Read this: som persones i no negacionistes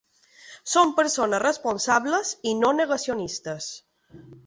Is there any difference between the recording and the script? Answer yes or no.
yes